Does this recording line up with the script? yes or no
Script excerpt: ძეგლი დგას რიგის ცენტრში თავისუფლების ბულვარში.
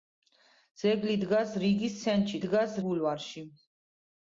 no